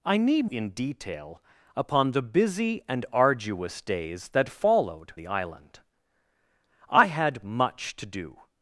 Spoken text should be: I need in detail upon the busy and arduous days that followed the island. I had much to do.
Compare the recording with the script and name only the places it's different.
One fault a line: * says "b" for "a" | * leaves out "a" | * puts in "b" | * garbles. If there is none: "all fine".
all fine